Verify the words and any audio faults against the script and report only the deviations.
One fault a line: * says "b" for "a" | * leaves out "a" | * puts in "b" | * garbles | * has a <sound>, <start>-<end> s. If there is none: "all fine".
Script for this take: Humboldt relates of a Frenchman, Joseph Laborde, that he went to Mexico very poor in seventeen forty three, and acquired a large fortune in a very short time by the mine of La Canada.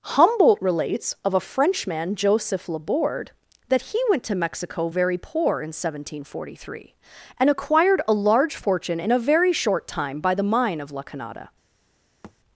* has a thud, 12.2-12.4 s